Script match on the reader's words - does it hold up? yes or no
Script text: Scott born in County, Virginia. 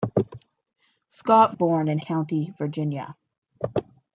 yes